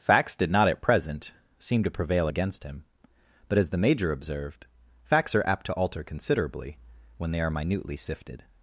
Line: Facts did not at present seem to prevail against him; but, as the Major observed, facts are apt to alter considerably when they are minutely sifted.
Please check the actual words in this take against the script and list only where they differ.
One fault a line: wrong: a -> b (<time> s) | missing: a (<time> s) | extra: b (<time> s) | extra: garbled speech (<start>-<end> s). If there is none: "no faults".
no faults